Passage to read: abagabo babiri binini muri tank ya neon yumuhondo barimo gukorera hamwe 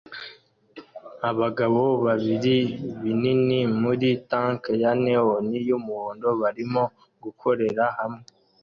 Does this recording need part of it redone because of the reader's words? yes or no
no